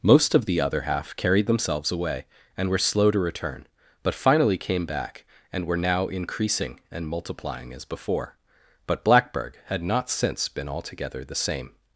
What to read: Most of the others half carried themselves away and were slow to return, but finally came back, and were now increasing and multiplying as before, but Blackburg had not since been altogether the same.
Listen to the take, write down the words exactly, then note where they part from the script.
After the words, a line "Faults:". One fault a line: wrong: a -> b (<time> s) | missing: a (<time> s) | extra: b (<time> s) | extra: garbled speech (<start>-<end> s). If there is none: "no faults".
Most of the other half carried themselves away and were slow to return, but finally came back, and were now increasing and multiplying as before, but Blackburg had not since been altogether the same.
Faults:
wrong: others -> other (0.6 s)